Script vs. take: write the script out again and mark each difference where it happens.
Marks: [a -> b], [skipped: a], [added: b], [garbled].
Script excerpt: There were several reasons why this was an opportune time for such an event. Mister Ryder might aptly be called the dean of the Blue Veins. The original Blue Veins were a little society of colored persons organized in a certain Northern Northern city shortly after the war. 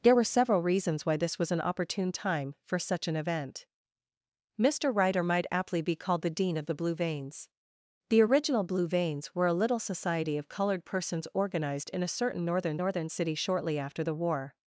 There were several reasons why this was an opportune time for such an event. Mister Ryder might aptly be called the dean of the Blue Veins. The original Blue Veins were a little society of colored persons organized in a certain Northern Northern city shortly after the war.